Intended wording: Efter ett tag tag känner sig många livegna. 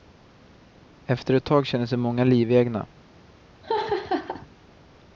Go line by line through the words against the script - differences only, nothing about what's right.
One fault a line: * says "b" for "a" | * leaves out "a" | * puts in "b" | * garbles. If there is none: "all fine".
* leaves out "tag"